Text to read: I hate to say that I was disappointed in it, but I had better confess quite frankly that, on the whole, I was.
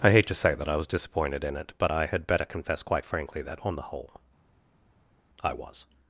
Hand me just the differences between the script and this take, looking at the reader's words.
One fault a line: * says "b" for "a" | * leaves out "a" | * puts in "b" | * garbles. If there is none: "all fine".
all fine